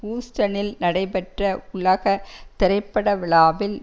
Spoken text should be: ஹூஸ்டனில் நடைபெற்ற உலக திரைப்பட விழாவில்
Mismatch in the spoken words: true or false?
false